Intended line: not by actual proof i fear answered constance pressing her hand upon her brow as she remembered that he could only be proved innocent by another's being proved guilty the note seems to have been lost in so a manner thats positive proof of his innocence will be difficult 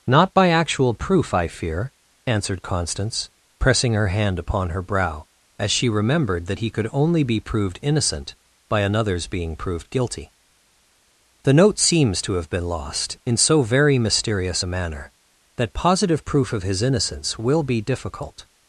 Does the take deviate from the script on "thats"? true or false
true